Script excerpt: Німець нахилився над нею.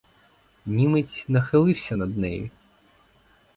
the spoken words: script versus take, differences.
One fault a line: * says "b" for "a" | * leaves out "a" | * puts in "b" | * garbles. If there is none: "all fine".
all fine